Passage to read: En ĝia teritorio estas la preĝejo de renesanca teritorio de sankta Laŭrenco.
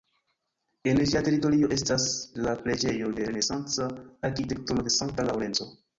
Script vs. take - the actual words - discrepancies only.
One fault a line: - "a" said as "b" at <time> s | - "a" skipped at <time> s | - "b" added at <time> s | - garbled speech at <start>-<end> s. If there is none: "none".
- "teritorio" said as "arkitekturo" at 4.3 s